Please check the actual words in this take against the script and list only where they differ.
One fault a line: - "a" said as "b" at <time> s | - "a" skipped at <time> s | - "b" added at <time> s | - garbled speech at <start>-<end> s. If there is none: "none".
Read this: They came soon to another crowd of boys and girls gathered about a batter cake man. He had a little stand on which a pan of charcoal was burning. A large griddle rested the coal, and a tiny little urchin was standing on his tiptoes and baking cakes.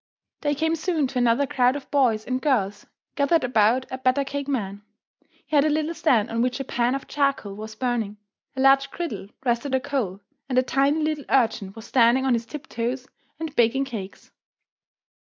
none